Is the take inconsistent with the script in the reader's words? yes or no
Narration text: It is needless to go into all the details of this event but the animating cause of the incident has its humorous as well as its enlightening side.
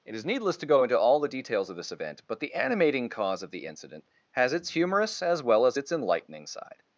no